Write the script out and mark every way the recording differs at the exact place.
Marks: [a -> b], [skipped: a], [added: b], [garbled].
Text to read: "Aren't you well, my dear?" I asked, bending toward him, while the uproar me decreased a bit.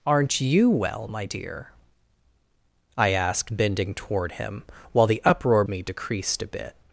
"Aren't you well, my dear?" I asked, bending toward him, while the uproar me decreased a bit.